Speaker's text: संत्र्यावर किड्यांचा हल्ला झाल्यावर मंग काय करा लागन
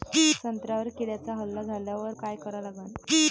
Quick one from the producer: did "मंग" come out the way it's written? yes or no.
no